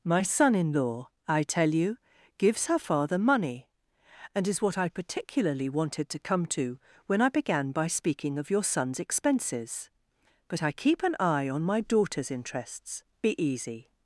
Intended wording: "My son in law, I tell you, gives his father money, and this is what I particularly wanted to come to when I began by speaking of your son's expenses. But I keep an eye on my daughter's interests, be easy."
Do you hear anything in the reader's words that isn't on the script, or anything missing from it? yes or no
yes